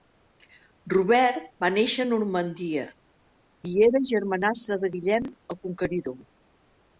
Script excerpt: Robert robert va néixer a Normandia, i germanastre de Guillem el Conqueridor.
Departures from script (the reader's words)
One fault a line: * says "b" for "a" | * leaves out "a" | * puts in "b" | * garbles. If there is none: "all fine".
* leaves out "robert"
* puts in "era"